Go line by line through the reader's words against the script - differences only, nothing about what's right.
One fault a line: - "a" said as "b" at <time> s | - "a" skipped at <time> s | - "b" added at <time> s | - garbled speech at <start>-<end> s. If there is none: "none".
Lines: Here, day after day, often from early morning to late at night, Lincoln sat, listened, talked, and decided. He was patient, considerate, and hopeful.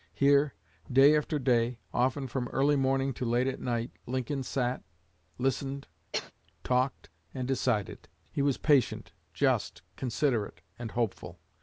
- "just" added at 9.3 s